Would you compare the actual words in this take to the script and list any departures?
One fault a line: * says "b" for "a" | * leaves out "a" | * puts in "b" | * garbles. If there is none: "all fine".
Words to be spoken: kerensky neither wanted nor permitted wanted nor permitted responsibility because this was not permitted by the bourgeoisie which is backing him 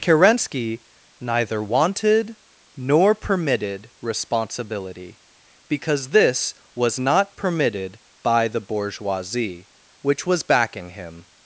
* leaves out "wanted nor permitted"
* says "was" for "is"